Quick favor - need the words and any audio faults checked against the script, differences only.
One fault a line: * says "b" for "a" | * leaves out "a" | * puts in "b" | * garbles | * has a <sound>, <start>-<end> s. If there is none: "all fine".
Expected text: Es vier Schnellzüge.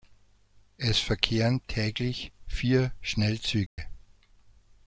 * puts in "verkehren täglich"
* has a dropout, 3.7-3.8 s